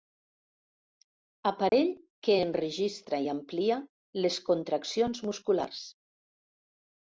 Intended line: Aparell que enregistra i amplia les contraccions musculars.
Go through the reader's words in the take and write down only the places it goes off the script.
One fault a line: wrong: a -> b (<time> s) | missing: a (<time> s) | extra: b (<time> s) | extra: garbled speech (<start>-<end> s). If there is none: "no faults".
no faults